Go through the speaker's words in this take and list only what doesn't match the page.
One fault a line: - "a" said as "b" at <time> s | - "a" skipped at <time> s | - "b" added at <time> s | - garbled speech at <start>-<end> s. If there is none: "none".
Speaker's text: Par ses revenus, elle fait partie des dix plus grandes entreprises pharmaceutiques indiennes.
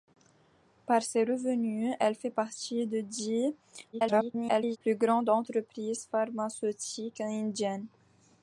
- garbled speech at 3.9-4.8 s